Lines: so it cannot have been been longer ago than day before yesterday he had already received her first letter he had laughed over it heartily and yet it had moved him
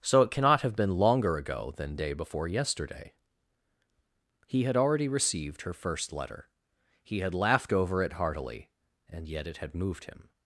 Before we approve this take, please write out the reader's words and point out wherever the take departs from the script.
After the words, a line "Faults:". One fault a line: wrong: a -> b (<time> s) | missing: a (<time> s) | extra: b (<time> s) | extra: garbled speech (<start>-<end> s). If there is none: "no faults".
so it cannot have been longer ago than day before yesterday he had already received her first letter he had laughed over it heartily and yet it had moved him
Faults:
missing: been (1.0 s)